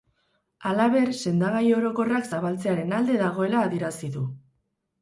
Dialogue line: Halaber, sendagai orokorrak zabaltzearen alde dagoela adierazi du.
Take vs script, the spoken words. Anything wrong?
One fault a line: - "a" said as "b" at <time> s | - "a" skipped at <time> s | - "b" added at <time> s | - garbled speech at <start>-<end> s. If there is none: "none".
none